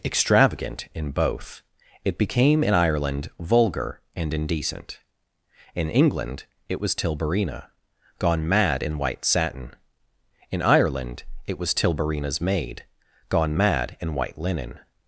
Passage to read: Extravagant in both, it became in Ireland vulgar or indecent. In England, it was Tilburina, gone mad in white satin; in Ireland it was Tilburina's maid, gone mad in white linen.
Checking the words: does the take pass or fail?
fail